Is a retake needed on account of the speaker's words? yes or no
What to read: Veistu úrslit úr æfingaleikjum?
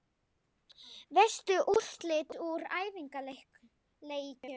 no